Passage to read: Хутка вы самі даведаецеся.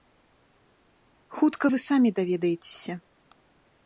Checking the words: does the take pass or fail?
pass